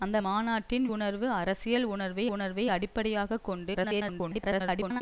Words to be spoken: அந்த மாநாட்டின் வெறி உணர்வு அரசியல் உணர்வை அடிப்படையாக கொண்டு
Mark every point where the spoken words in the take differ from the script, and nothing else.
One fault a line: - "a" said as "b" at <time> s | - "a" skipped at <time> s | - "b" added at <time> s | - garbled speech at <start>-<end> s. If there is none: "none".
- "வெறி" skipped at 0.9 s
- "உணர்வை" added at 2.3 s
- garbled speech at 3.7-5.0 s